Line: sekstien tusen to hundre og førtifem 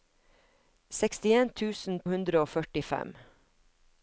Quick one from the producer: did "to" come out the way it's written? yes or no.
no